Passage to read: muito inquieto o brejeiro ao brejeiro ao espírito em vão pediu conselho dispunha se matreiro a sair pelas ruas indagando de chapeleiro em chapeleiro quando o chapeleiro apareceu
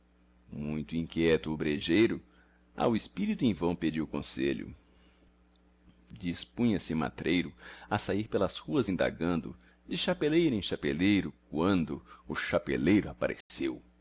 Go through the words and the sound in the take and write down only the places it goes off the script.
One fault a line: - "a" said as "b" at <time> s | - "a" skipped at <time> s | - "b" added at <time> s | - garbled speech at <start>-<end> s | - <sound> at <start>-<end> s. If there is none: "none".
- "brejeiro ao" skipped at 3.0 s
- dropout at 13.4-13.5 s